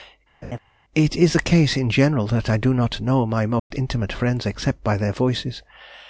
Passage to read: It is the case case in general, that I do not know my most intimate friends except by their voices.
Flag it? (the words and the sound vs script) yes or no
yes